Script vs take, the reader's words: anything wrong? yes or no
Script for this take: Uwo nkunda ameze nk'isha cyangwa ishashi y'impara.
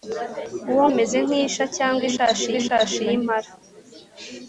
yes